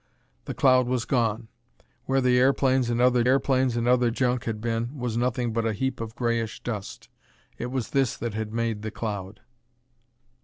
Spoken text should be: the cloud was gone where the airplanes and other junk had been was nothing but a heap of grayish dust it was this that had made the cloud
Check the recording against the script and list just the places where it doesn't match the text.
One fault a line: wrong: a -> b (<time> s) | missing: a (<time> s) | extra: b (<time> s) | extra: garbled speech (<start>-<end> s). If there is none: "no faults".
extra: airplanes and other (3.3 s)